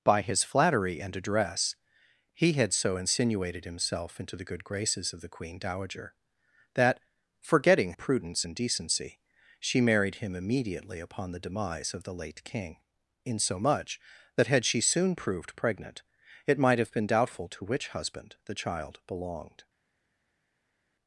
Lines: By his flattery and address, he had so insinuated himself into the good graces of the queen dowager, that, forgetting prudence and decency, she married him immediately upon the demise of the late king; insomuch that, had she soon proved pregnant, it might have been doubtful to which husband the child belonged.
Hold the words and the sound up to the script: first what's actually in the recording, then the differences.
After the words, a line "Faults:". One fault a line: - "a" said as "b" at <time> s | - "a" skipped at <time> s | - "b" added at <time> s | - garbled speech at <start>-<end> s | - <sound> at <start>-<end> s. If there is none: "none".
By his flattery and address, he had so insinuated himself into the good graces of the queen dowager, that, forgetting prudence and decency, she married him immediately upon the demise of the late king; insomuch that, had she soon proved pregnant, it might have been doubtful to which husband the child belonged.
Faults:
none